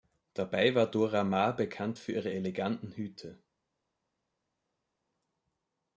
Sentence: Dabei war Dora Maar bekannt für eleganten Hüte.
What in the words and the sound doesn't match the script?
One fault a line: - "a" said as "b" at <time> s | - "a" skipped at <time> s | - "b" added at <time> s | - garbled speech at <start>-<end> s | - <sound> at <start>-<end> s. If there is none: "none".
- "ihre" added at 2.1 s